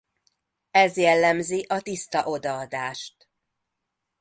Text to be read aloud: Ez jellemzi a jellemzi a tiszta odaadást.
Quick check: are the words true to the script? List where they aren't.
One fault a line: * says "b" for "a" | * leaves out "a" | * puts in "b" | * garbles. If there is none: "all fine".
* leaves out "jellemzi a"